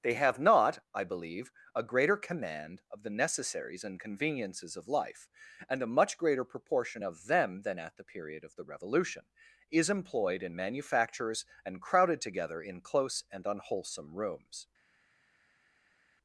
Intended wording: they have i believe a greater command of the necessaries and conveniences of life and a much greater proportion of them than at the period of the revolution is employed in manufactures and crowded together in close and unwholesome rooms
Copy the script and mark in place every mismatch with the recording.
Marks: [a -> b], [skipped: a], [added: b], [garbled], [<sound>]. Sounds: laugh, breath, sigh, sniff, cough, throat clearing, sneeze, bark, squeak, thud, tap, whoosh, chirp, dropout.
they have [added: not] i believe a greater command of the necessaries and conveniences of life and a much greater proportion of them than at the period of the revolution is employed in manufactures and crowded together in close and unwholesome rooms